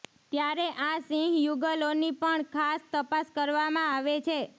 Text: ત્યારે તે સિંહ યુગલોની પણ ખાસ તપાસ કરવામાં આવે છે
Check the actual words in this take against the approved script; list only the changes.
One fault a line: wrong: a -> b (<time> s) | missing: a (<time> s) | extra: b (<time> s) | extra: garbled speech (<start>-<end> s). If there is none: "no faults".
wrong: તે -> આ (0.8 s)